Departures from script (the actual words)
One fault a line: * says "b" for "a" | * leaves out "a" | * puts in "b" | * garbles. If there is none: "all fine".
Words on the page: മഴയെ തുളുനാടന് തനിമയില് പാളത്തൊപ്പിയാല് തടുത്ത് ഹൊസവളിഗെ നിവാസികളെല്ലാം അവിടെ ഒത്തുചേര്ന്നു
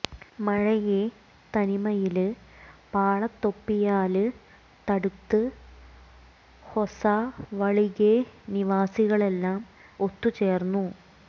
* leaves out "തുളുനാടന്"
* leaves out "അവിടെ"